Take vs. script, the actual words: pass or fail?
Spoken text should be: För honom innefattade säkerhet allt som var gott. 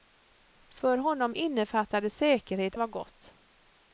fail